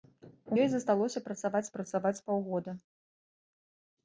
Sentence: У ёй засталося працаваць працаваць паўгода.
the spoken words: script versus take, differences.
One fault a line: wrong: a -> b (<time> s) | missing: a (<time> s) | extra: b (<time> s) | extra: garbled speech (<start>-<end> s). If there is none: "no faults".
no faults